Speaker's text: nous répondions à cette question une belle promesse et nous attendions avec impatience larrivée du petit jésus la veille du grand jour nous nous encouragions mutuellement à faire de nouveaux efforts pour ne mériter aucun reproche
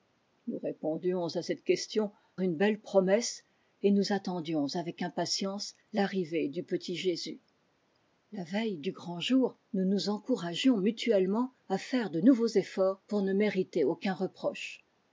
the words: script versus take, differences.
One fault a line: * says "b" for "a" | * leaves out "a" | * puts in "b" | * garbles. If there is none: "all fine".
all fine